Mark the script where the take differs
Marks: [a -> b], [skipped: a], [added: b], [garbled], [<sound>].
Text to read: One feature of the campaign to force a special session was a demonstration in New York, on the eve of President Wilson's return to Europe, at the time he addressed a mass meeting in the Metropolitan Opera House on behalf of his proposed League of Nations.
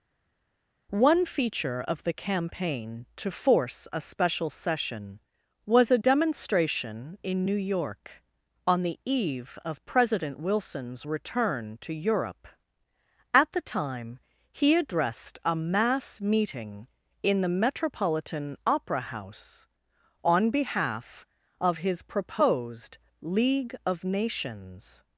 One feature of the campaign to force a special session was a demonstration in New York, on the eve of President Wilson's return to Europe, at the time he addressed a mass meeting in the Metropolitan Opera House on behalf of his proposed League of Nations.